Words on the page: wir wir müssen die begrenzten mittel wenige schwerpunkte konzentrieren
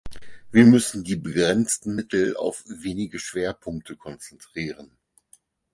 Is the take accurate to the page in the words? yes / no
no